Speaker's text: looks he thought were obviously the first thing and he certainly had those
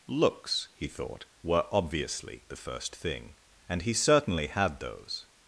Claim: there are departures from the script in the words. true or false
false